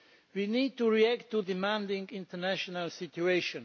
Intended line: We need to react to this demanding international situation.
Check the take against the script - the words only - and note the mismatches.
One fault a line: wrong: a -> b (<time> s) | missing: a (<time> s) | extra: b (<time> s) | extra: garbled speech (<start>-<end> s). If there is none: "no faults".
missing: this (1.4 s)